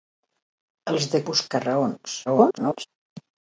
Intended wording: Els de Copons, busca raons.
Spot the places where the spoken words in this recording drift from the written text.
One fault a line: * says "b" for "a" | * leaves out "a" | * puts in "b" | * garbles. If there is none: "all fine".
* leaves out "Copons"
* garbles